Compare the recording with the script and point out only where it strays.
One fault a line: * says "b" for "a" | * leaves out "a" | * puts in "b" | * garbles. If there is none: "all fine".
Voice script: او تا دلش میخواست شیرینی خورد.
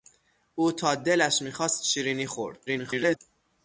* garbles